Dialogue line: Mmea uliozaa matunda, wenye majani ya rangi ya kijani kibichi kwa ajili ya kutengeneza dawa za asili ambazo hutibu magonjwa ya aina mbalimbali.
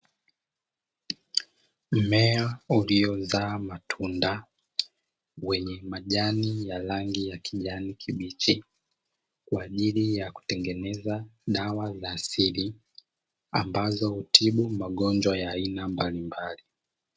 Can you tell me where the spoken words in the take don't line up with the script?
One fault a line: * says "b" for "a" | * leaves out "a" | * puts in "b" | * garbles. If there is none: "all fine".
all fine